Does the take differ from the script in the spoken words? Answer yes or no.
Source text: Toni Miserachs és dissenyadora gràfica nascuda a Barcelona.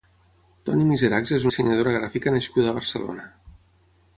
no